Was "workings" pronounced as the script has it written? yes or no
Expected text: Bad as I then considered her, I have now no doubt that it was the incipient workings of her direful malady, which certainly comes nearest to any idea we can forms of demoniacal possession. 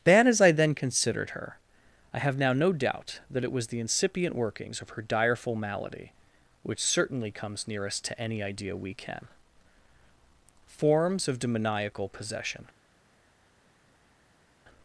yes